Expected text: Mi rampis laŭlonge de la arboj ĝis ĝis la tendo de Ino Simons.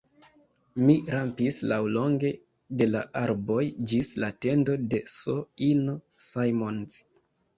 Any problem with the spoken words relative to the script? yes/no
yes